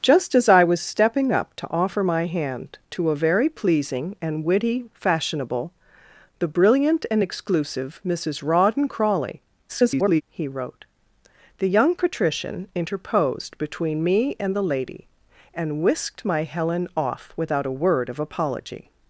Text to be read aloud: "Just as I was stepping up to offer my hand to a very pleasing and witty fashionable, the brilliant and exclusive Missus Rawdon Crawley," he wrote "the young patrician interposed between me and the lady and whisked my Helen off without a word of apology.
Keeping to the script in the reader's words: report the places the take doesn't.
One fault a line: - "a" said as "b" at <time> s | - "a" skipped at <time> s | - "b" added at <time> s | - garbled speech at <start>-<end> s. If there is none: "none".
- garbled speech at 9.7-10.2 s